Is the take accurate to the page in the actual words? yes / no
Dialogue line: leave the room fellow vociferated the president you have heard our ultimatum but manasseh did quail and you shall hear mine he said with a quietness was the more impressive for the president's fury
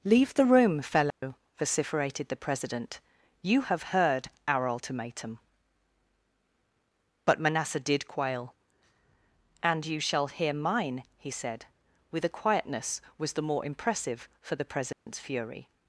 yes